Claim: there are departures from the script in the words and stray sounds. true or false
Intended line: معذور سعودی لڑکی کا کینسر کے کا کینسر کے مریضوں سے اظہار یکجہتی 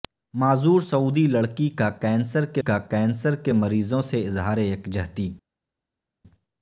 false